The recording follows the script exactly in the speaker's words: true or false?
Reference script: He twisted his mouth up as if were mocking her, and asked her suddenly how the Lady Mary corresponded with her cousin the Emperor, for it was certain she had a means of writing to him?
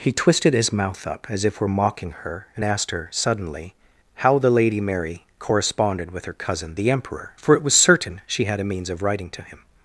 true